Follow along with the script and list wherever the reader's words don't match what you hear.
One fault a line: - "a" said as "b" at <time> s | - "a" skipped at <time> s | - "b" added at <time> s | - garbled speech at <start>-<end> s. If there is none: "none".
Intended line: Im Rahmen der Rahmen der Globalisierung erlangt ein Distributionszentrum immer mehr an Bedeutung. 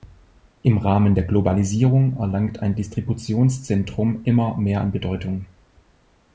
- "Rahmen der" skipped at 1.2 s